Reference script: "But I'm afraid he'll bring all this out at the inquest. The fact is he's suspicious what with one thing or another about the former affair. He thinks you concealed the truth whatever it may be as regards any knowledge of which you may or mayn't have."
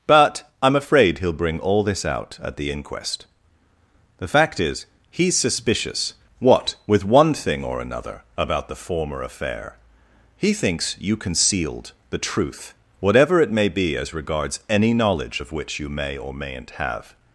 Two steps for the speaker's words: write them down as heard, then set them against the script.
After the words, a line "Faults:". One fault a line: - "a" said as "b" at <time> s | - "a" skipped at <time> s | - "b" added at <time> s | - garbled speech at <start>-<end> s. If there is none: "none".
"But I'm afraid he'll bring all this out at the inquest. The fact is he's suspicious what with one thing or another about the former affair. He thinks you concealed the truth whatever it may be as regards any knowledge of which you may or mayn't have."
Faults:
none